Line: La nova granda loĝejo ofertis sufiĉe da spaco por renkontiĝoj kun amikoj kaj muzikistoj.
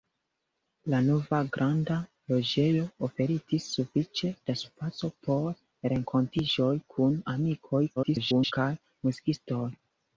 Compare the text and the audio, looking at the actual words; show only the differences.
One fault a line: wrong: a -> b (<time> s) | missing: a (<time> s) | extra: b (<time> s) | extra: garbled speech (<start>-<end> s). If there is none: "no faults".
extra: garbled speech (8.0-8.5 s)